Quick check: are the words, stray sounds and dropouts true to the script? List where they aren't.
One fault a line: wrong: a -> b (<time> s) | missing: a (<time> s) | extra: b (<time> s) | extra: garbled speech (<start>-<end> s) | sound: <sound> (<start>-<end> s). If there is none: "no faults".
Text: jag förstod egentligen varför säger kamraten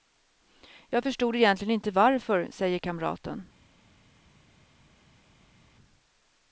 extra: inte (1.7 s)